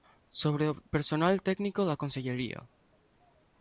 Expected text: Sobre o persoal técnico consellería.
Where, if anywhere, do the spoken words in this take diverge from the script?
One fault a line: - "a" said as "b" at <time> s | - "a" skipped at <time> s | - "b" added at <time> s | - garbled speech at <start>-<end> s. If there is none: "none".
- "da" added at 1.9 s